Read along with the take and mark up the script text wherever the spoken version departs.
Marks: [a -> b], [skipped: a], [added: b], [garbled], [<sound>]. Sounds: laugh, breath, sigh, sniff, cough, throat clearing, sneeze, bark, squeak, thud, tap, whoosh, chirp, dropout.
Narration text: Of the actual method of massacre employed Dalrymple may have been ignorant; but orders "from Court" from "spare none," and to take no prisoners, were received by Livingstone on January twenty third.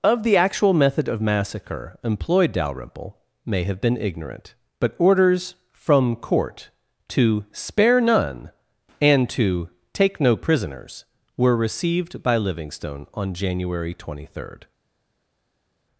Of the actual method of massacre employed Dalrymple may have been ignorant; but orders "from Court" [from -> to] "spare none," and to take no prisoners, were received by Livingstone on January twenty third.